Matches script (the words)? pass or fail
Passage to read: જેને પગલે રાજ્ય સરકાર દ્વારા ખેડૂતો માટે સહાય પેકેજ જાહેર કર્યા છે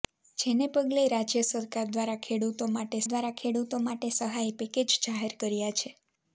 fail